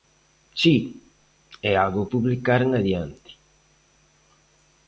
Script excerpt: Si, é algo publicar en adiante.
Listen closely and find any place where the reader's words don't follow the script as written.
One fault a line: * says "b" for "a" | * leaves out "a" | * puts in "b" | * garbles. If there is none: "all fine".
all fine